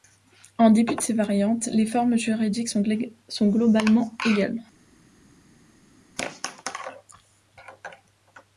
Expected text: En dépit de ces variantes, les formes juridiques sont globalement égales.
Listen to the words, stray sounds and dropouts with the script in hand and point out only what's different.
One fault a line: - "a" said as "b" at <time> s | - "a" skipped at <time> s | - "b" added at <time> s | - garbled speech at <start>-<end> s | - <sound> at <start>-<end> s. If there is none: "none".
none